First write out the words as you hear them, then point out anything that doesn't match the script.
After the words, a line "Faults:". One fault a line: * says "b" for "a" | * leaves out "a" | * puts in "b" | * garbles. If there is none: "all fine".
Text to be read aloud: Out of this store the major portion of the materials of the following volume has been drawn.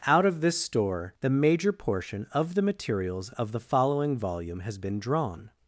Out of this store the major portion of the materials of the following volume has been drawn.
Faults:
all fine